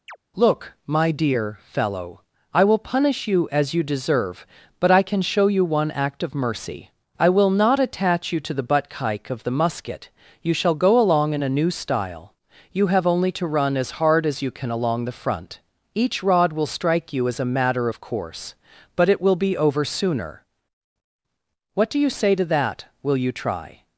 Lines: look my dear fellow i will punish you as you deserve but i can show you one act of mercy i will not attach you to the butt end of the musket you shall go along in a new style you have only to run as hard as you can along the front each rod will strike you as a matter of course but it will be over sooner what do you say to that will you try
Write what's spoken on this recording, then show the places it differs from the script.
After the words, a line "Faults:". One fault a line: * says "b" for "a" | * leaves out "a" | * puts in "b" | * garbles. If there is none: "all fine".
look my dear fellow i will punish you as you deserve but i can show you one act of mercy i will not attach you to the butt kike of the musket you shall go along in a new style you have only to run as hard as you can along the front each rod will strike you as a matter of course but it will be over sooner what do you say to that will you try
Faults:
* says "kike" for "end"